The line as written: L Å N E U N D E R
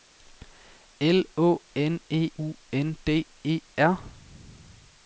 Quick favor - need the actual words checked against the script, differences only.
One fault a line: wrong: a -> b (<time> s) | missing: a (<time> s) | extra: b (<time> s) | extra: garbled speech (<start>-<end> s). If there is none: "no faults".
no faults